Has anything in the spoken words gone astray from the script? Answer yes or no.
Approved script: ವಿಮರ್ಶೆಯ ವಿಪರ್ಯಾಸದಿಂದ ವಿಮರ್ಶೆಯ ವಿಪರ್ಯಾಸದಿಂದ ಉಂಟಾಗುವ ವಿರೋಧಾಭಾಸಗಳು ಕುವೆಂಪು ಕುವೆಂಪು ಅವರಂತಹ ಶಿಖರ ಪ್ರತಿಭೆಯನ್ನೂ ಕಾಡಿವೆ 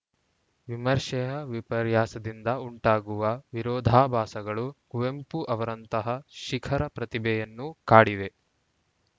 yes